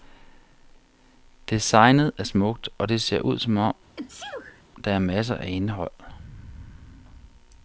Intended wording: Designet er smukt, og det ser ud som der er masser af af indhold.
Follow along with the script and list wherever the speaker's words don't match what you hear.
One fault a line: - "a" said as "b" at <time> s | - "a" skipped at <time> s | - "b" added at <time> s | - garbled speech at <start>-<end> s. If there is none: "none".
- "om" added at 3.6 s
- "af" skipped at 5.5 s